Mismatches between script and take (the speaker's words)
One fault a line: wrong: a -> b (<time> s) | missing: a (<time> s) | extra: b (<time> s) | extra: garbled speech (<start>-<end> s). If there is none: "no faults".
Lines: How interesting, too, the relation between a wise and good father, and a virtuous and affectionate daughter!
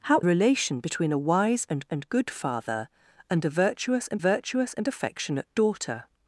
missing: interesting too the (0.2 s)
extra: and (1.9 s)
extra: virtuous and (4.2 s)